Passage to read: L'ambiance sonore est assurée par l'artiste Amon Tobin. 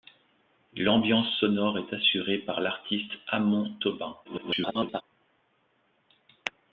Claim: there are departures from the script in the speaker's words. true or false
true